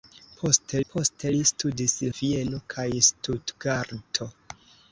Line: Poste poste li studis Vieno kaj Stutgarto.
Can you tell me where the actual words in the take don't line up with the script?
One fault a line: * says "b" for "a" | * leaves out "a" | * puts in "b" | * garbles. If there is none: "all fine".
all fine